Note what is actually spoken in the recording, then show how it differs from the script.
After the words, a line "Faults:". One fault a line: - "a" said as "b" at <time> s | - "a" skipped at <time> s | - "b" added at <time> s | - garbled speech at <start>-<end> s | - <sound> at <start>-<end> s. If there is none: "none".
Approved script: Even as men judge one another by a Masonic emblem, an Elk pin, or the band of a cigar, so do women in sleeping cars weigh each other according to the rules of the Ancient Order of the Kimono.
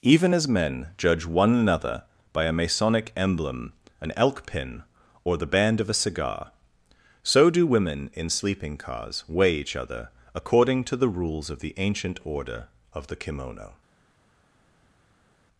Even as men judge one another by a Masonic emblem, an Elk pin, or the band of a cigar, so do women in sleeping cars weigh each other according to the rules of the Ancient Order of the Kimono.
Faults:
none